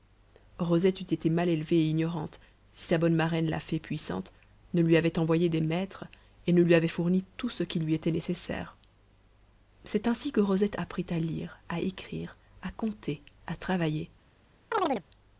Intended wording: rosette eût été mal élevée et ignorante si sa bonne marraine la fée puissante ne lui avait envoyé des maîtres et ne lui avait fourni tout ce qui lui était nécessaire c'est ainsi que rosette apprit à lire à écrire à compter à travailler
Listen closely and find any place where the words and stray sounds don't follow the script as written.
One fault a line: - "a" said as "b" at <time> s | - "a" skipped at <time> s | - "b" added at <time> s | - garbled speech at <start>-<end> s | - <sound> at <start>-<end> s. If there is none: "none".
- chirp at 14.7-15.0 s